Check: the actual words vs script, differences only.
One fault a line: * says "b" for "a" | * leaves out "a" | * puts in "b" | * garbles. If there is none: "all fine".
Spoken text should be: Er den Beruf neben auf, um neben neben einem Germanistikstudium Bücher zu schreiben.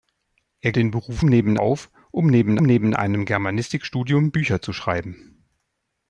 all fine